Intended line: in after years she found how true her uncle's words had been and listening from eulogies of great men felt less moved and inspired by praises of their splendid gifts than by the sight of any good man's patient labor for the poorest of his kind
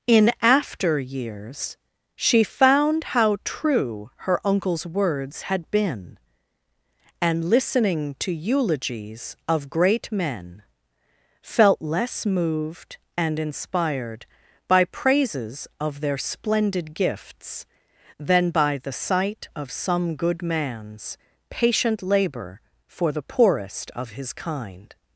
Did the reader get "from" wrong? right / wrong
wrong